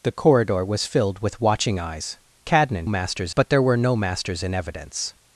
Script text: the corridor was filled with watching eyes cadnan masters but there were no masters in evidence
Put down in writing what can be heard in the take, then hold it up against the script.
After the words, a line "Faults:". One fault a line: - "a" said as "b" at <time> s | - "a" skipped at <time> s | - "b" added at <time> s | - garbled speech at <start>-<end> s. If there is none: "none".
the corridor was filled with watching eyes cadnan masters but there were no masters in evidence
Faults:
none